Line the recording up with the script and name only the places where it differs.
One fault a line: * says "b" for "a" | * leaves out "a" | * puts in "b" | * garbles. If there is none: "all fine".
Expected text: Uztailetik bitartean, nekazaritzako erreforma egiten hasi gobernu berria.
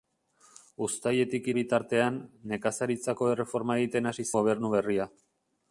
all fine